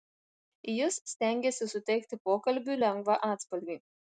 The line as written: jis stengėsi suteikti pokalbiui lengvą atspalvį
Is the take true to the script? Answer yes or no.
yes